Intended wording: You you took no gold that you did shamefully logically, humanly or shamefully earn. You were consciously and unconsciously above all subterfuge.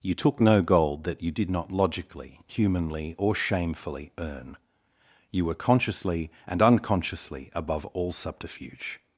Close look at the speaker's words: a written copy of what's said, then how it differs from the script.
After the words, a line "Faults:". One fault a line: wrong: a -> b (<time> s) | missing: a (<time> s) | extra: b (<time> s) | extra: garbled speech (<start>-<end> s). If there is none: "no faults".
You took no gold that you did not logically, humanly or shamefully earn. You were consciously and unconsciously above all subterfuge.
Faults:
missing: you (0.1 s)
wrong: shamefully -> not (1.5 s)